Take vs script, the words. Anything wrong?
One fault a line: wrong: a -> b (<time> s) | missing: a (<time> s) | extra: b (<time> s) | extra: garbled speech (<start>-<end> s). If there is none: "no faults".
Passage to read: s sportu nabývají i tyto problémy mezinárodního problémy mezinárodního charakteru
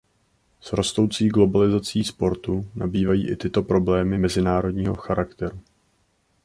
extra: rostoucí globalizací (0.7 s)
missing: problémy mezinárodního (4.9 s)